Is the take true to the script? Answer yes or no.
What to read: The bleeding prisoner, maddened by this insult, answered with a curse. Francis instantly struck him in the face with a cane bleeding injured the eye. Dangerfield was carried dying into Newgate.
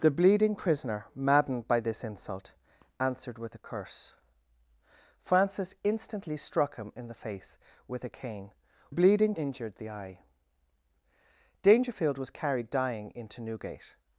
yes